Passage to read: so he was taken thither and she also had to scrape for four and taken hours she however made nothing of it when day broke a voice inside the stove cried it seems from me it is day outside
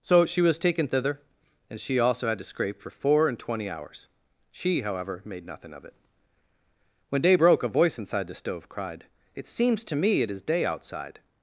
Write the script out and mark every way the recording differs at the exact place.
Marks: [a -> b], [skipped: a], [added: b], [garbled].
so [he -> she] was taken thither and she also had to scrape for four and [taken -> twenty] hours she however made nothing of it when day broke a voice inside the stove cried it seems [from -> to] me it is day outside